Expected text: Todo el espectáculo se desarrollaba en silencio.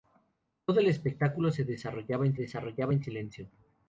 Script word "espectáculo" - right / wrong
right